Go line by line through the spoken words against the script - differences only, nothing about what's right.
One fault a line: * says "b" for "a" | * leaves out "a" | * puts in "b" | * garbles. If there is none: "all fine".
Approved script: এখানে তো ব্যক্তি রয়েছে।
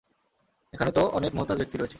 * puts in "অনেক মুহতাজ"